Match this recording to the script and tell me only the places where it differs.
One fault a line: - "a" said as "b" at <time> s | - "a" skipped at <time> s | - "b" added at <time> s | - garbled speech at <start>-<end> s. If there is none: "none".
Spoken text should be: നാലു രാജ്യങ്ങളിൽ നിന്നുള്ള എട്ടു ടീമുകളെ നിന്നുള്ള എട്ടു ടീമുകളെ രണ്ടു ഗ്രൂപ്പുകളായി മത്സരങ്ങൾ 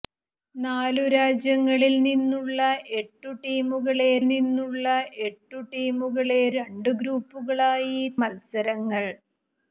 none